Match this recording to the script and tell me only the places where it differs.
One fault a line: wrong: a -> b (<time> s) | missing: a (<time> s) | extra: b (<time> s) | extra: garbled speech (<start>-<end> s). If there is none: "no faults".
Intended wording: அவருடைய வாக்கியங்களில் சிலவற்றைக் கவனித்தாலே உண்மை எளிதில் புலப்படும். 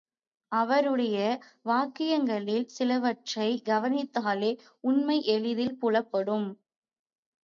no faults